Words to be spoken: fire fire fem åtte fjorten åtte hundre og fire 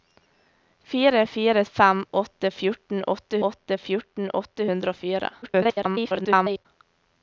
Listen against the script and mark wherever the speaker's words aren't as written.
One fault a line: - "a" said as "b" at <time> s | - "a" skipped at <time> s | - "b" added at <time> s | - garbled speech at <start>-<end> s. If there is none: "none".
- "åtte fjorten åtte" added at 3.5 s
- garbled speech at 5.4-6.7 s